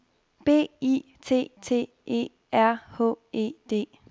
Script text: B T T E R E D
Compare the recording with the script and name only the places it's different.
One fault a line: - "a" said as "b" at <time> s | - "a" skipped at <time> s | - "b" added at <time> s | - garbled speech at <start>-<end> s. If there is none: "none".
- "I" added at 0.8 s
- "H" added at 3.0 s